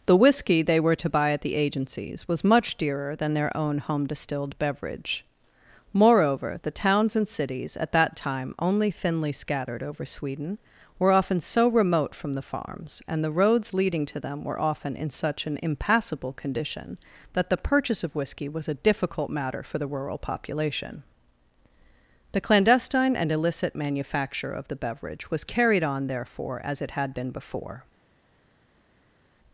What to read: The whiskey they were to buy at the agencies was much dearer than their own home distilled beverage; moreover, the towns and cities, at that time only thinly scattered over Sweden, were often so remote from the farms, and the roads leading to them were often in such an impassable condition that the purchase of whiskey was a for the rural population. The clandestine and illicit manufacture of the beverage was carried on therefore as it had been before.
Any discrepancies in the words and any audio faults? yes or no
yes